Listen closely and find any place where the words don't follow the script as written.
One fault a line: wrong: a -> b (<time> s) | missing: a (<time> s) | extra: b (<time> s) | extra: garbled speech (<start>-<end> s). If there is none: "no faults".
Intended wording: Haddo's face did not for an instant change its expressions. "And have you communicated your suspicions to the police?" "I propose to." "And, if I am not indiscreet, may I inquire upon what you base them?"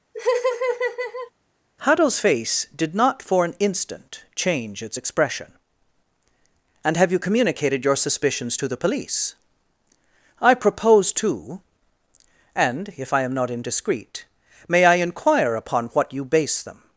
wrong: expressions -> expression (5.0 s)